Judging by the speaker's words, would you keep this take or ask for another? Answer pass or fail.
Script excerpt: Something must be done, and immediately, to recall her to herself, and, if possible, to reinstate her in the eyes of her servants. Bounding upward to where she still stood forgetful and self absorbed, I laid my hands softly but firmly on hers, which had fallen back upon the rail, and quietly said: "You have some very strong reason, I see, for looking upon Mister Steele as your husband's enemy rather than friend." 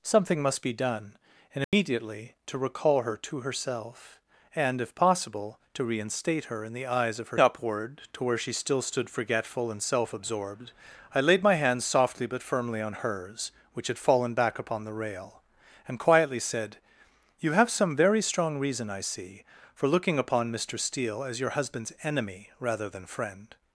fail